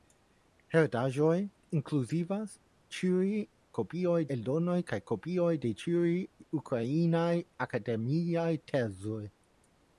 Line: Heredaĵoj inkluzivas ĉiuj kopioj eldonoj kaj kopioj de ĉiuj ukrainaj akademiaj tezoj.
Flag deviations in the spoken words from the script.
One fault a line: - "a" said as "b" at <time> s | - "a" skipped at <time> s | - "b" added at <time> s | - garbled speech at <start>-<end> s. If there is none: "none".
none